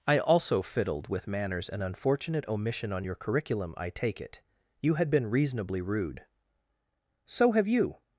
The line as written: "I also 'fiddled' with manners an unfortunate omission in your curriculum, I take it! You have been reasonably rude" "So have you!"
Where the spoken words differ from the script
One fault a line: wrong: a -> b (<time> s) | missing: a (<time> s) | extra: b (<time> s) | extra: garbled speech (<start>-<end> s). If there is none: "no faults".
wrong: in -> on (2.9 s)
wrong: have -> had (5.0 s)